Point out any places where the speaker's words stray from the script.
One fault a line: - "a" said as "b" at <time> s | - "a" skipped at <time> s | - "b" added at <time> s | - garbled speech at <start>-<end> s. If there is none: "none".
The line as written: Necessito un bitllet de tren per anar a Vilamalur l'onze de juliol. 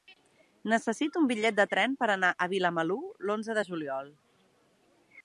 none